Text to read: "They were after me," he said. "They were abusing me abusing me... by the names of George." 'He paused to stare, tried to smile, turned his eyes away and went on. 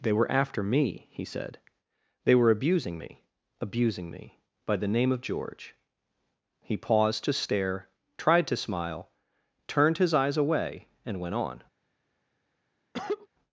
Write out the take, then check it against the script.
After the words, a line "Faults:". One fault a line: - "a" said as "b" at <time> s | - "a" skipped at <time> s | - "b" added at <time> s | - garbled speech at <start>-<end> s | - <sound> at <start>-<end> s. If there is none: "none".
"They were after me," he said. "They were abusing me abusing me... by the name of George." 'He paused to stare, tried to smile, turned his eyes away and went on.
Faults:
- "names" said as "name" at 4.9 s
- cough at 12.9-13.3 s